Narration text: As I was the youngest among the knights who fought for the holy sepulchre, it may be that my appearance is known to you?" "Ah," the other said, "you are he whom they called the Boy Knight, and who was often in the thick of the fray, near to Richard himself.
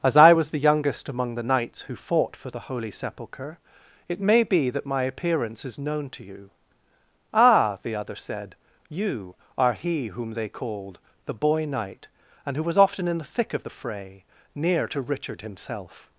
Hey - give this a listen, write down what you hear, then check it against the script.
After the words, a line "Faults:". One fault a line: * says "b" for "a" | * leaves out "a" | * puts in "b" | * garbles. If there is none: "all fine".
As I was the youngest among the knights who fought for the holy sepulchre, it may be that my appearance is known to you?" "Ah," the other said, "you are he whom they called the Boy Knight, and who was often in the thick of the fray, near to Richard himself.
Faults:
all fine